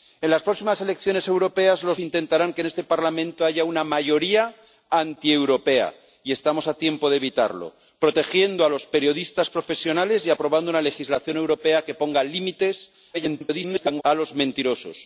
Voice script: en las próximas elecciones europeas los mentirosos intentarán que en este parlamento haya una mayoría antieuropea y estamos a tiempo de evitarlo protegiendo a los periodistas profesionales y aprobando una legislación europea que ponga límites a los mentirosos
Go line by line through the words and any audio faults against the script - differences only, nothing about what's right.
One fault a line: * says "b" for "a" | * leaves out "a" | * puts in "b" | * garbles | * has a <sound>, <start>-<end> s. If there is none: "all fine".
* leaves out "mentirosos"
* garbles